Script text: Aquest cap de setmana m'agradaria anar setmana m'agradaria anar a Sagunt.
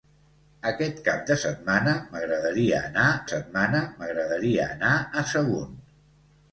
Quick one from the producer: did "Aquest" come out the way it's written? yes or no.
yes